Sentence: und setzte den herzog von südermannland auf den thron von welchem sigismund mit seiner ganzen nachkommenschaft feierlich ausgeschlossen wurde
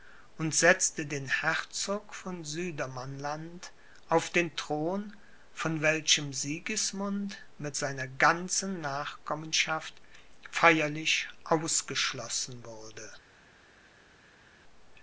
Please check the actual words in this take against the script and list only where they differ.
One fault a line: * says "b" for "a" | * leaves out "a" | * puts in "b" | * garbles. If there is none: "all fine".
all fine